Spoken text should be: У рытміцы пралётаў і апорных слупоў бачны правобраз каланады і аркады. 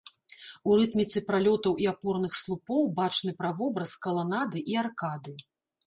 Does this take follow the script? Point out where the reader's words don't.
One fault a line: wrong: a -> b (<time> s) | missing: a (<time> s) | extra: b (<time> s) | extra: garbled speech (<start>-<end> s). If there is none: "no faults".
no faults